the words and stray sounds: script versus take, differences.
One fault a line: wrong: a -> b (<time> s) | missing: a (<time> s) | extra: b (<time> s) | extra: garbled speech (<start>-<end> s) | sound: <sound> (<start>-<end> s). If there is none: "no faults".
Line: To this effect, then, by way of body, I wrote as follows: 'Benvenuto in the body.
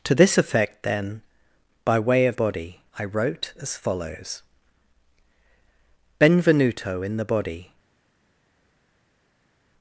no faults